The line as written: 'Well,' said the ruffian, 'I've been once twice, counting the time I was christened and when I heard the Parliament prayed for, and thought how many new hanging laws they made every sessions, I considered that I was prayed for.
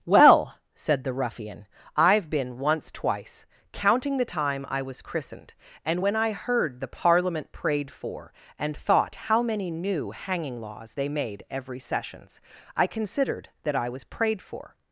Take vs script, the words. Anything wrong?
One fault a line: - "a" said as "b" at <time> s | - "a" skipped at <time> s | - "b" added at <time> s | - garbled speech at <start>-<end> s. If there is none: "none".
none